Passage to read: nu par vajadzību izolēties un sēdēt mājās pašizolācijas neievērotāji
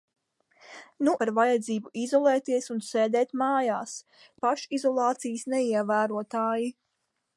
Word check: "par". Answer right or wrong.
right